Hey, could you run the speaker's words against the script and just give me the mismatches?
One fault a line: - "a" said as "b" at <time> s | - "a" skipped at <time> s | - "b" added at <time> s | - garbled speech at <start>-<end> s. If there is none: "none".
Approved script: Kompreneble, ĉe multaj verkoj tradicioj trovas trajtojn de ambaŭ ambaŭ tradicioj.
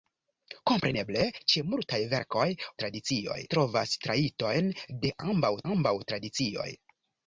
none